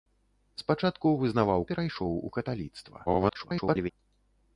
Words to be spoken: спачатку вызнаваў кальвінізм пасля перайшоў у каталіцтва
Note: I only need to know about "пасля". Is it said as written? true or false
false